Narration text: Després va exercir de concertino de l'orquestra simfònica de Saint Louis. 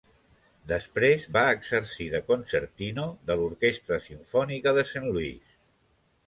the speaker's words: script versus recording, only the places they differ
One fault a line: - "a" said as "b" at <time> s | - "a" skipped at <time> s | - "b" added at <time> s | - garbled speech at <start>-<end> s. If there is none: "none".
none